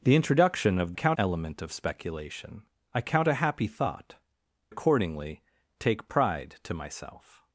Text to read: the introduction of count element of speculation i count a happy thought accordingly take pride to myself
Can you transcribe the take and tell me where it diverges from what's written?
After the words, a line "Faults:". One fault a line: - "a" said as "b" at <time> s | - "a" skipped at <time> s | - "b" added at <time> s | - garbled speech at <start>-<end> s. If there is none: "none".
the introduction of count element of speculation i count a happy thought accordingly take pride to myself
Faults:
none